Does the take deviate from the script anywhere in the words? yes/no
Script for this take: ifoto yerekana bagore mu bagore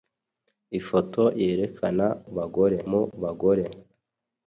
no